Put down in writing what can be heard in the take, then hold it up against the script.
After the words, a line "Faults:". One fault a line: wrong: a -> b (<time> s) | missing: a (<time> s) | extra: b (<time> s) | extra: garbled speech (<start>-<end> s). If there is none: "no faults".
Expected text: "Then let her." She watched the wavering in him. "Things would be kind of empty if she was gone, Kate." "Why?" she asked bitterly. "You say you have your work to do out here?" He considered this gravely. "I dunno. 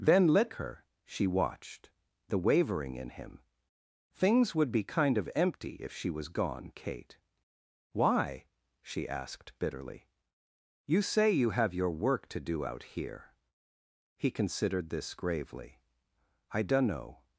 "Then let her." She watched the wavering in him. "Things would be kind of empty if she was gone, Kate." "Why?" she asked bitterly. "You say you have your work to do out here?" He considered this gravely. "I dunno.
Faults:
no faults